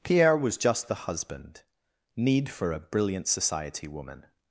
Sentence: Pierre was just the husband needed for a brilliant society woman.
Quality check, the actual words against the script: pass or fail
fail